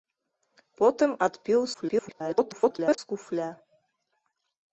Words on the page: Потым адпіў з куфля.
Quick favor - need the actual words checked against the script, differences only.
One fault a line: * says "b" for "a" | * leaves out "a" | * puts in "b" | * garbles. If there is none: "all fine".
* garbles